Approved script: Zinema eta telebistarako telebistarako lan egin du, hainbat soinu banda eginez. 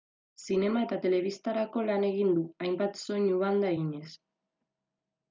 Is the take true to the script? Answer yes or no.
no